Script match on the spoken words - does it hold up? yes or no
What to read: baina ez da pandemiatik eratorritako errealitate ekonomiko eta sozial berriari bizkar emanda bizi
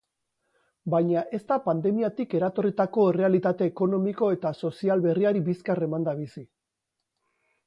yes